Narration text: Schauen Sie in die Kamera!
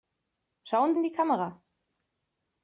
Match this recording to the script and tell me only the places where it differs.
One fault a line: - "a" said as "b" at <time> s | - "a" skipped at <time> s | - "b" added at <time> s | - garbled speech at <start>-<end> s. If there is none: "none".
- "Sie" skipped at 0.9 s